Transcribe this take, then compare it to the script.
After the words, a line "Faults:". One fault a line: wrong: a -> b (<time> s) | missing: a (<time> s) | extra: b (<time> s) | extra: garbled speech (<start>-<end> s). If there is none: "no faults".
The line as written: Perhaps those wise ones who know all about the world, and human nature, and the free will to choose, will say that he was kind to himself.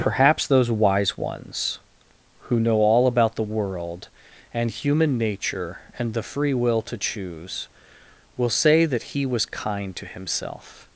Perhaps those wise ones who know all about the world, and human nature, and the free will to choose, will say that he was kind to himself.
Faults:
no faults